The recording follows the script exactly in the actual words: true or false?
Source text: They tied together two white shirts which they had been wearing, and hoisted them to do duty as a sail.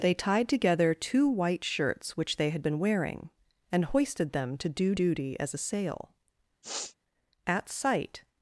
false